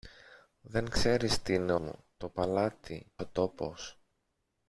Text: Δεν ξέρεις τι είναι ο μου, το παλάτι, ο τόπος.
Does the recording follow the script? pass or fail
pass